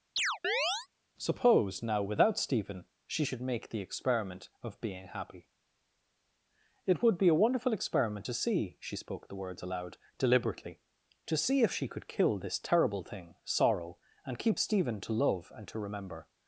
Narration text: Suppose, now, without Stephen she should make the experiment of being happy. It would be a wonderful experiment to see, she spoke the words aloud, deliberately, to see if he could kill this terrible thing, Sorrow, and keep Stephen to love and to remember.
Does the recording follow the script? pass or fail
fail